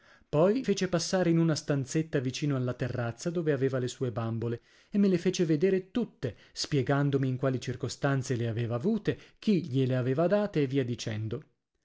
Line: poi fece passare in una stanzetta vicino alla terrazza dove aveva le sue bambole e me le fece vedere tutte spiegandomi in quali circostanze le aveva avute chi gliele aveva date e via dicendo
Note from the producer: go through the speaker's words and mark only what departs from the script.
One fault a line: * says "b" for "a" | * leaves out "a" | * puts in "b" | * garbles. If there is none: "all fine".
all fine